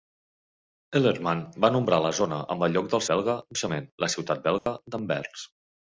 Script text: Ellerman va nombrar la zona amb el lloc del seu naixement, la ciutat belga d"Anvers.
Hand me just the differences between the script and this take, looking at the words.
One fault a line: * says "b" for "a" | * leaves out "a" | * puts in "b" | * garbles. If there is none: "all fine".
* says "belga" for "seu"